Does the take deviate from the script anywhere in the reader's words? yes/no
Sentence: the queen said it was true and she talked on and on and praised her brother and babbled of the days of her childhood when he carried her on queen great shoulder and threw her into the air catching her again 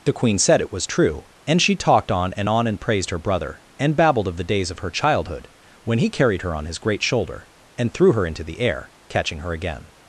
yes